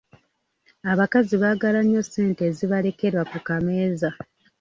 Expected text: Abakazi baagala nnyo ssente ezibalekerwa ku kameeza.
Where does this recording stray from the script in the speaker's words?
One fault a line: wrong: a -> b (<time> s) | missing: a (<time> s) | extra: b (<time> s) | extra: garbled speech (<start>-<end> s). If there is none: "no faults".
no faults